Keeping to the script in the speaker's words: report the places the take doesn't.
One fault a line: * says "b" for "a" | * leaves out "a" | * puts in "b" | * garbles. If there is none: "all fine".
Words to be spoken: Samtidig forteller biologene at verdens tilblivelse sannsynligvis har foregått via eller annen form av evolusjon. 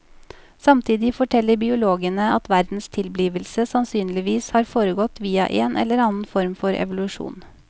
* puts in "en"
* says "for" for "av"